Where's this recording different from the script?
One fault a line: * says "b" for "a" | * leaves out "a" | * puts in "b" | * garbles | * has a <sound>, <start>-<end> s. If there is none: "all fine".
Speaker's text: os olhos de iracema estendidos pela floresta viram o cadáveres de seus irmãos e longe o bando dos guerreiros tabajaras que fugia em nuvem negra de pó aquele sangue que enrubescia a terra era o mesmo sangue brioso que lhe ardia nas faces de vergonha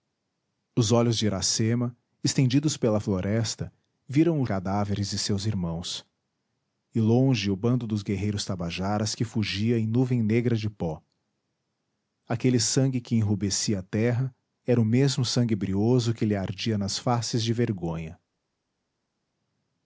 all fine